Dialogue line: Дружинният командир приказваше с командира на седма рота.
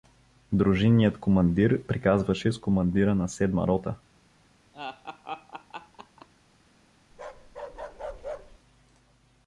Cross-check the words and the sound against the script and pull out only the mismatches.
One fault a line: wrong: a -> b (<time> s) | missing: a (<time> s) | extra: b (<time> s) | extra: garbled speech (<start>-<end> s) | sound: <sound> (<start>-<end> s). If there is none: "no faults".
sound: laugh (4.7-6.3 s)
sound: bark (7.1-8.6 s)